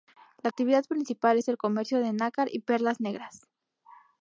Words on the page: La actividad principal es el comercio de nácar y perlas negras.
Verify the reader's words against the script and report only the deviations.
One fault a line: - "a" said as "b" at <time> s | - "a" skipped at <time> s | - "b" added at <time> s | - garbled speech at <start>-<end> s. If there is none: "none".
none